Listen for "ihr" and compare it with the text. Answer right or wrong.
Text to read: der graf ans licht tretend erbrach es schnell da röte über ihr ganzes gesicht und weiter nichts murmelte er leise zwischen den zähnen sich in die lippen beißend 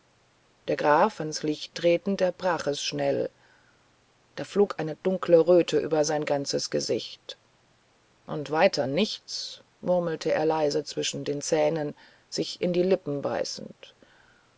wrong